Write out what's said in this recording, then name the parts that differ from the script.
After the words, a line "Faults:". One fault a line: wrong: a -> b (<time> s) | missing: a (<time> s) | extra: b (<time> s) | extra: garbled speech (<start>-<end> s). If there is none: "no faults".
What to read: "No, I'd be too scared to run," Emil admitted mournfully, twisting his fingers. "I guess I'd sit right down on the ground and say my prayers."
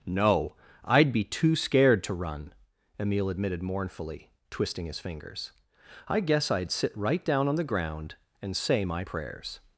"No, I'd be too scared to run," Emil admitted mournfully, twisting his fingers. "I guess I'd sit right down on the ground and say my prayers."
Faults:
no faults